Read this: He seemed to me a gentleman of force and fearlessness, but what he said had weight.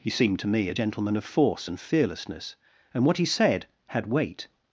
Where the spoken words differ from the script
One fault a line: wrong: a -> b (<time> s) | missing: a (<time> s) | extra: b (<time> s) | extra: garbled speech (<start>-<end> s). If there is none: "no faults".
wrong: but -> and (2.9 s)